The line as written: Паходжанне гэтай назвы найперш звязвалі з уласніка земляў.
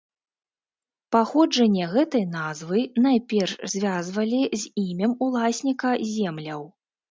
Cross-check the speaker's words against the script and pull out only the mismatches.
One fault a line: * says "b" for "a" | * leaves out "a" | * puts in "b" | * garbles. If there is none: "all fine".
* puts in "імем"